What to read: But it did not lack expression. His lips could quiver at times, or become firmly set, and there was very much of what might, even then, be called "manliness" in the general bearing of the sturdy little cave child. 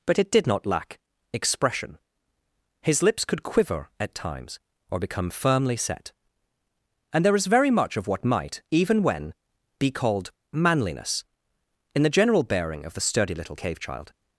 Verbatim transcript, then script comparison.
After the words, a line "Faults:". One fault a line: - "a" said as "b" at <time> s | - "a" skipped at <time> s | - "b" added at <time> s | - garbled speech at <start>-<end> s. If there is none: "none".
But it did not lack expression. His lips could quiver at times, or become firmly set, and there is very much of what might, even when, be called "manliness" in the general bearing of the sturdy little cave child.
Faults:
- "was" said as "is" at 7.3 s
- "then" said as "when" at 9.0 s